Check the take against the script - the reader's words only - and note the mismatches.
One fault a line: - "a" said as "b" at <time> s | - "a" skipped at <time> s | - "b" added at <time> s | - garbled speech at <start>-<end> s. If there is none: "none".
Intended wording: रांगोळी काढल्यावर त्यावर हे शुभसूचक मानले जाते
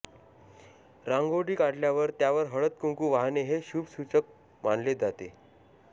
- "हळद कुंकू वाहणे" added at 2.5 s